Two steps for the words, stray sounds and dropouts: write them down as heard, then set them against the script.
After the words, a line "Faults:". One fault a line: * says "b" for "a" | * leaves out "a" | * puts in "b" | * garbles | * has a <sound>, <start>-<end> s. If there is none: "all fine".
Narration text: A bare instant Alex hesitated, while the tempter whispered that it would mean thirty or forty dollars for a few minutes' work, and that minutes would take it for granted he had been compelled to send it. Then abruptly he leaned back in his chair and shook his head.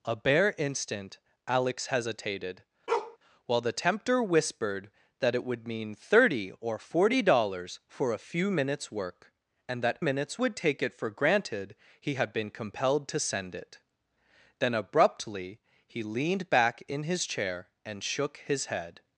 A bare instant Alex hesitated, while the tempter whispered that it would mean thirty or forty dollars for a few minutes' work, and that minutes would take it for granted he had been compelled to send it. Then abruptly he leaned back in his chair and shook his head.
Faults:
* has a bark, 2.9-3.2 s